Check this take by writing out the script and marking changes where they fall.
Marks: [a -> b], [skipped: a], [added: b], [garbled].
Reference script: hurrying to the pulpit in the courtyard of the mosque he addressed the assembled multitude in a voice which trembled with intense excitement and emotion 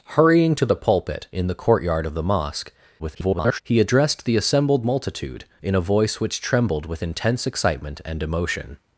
hurrying to the pulpit in the courtyard of the mosque [garbled] he addressed the assembled multitude in a voice which trembled with intense excitement and emotion